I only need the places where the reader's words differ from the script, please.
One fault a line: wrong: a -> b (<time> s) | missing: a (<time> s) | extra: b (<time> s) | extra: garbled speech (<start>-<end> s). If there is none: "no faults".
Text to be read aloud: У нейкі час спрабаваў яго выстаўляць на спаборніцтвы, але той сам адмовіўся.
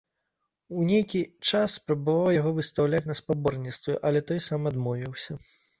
no faults